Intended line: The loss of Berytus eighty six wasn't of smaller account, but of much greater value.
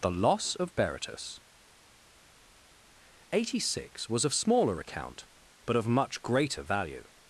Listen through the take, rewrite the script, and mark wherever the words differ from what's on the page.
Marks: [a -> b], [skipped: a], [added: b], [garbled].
The loss of Berytus eighty six [wasn't -> was] of smaller account, but of much greater value.